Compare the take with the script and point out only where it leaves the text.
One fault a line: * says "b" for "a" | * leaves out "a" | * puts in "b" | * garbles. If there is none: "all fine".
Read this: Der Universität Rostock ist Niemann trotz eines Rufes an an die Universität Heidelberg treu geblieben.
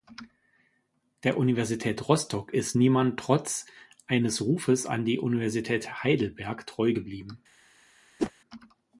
* leaves out "an"